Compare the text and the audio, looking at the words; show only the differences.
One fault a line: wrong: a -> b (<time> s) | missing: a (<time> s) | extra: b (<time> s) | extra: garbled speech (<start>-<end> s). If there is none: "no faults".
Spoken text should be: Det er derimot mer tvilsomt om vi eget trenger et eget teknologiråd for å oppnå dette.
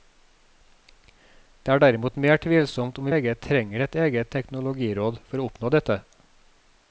no faults